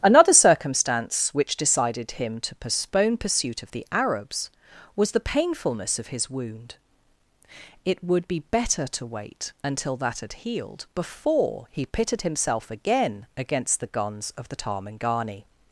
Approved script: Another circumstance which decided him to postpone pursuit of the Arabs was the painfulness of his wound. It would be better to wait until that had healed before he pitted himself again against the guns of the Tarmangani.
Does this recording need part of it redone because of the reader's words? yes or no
no